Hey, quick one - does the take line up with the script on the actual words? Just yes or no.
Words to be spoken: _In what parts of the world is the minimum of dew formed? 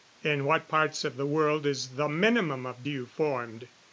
yes